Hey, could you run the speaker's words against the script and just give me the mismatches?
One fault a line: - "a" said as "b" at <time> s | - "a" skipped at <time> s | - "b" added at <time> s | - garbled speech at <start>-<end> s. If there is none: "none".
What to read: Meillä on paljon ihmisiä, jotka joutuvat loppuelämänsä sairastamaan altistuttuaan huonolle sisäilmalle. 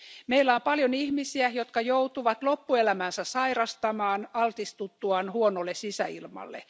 none